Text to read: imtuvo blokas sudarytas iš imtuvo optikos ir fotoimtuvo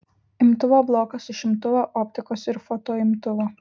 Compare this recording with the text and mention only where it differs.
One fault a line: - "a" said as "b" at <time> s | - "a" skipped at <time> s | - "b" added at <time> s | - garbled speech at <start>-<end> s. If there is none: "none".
- "sudarytas" skipped at 1.3 s